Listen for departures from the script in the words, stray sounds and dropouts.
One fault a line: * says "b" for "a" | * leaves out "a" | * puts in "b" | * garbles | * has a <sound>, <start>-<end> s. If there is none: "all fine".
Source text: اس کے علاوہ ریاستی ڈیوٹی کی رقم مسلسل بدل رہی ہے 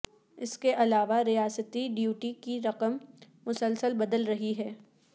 all fine